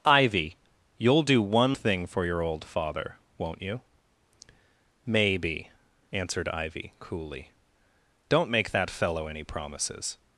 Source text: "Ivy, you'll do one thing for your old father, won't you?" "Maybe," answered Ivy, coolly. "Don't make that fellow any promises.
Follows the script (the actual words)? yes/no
yes